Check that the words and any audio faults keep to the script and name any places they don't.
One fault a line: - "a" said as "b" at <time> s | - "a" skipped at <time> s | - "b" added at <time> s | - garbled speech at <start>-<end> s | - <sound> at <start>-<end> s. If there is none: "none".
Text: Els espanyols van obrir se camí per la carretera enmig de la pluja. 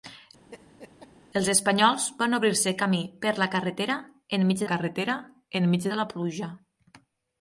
- laugh at 0.5-1.1 s
- "carretera enmig" added at 4.7 s